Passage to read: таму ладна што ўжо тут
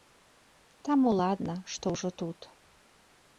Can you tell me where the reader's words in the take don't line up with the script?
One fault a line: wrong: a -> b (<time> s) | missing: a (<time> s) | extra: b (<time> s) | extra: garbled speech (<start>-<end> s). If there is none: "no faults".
no faults